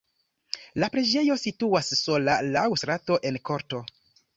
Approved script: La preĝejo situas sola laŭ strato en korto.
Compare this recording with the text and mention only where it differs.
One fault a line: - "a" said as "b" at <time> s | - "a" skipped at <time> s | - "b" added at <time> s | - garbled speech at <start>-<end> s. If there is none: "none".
none